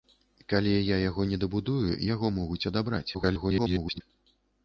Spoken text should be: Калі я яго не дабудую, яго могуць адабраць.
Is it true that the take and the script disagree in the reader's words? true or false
true